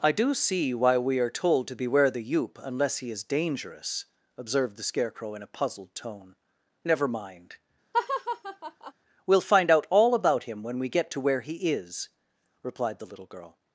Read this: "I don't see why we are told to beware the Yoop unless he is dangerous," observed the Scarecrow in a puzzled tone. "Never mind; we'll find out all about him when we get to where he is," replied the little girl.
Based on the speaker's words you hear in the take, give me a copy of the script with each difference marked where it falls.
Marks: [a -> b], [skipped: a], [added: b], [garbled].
"I [don't -> do] see why we are told to beware the Yoop unless he is dangerous," observed the Scarecrow in a puzzled tone. "Never mind; we'll find out all about him when we get to where he is," replied the little girl.